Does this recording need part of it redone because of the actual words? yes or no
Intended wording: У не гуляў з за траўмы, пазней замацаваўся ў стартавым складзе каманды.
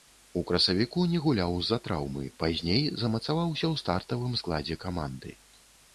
yes